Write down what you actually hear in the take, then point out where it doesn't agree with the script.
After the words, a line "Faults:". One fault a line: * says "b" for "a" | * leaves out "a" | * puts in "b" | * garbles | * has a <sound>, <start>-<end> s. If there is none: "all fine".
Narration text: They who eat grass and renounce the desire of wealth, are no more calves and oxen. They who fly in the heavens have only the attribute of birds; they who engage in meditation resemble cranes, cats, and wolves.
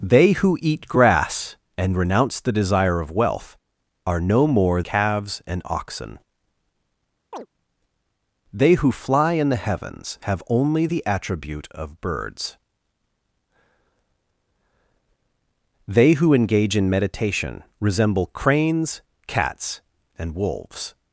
They who eat grass and renounce the desire of wealth, are no more calves and oxen. They who fly in the heavens have only the attribute of birds; they who engage in meditation resemble cranes, cats, and wolves.
Faults:
* has a chirp, 7.3-7.5 s